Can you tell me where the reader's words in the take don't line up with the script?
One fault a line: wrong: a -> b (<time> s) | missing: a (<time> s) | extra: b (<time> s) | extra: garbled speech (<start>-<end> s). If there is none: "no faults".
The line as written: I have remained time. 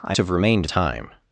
no faults